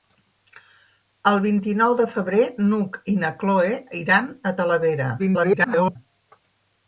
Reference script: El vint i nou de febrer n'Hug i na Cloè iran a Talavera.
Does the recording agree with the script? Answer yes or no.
no